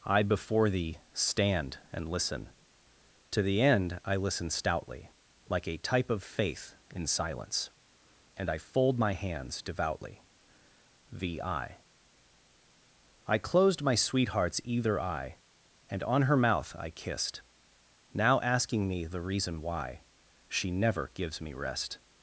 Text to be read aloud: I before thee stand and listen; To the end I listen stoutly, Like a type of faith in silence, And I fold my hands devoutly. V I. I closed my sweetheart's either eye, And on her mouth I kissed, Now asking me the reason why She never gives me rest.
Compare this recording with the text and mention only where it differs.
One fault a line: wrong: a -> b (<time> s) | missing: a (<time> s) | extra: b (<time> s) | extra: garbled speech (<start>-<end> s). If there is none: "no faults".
no faults